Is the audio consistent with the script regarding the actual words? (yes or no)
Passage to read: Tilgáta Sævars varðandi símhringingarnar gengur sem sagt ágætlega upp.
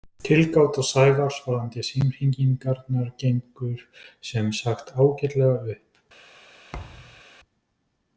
yes